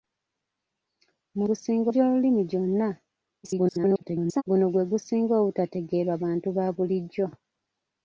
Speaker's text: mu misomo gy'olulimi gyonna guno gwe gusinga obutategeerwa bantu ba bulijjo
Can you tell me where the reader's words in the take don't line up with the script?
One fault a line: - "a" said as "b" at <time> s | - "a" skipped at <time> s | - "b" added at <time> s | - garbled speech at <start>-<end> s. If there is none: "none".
- "misomo" said as "gusinga" at 1.5 s
- garbled speech at 3.4-4.4 s